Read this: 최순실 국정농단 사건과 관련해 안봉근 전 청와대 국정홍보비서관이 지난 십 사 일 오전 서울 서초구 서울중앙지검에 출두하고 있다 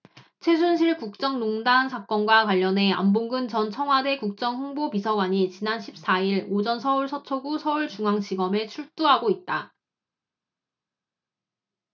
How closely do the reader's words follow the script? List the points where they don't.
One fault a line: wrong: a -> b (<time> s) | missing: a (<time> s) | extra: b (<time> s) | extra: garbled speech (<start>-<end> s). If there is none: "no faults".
no faults